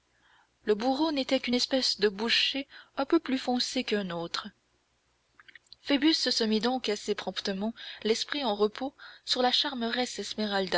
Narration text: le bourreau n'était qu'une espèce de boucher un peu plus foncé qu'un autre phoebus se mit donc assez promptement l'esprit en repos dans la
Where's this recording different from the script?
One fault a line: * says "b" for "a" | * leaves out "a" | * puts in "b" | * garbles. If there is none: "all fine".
* says "sur" for "dans"